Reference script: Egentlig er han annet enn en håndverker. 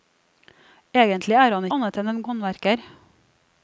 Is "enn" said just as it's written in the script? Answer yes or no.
yes